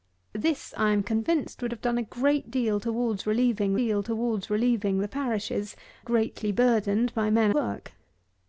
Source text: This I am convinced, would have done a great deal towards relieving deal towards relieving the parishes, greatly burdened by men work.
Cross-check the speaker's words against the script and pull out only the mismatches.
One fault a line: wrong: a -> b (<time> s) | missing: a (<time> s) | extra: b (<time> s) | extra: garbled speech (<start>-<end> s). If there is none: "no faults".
no faults